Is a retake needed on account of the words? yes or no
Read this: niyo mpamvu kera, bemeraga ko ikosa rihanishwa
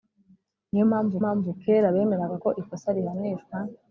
yes